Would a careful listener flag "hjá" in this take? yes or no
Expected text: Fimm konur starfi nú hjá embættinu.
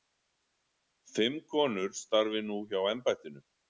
no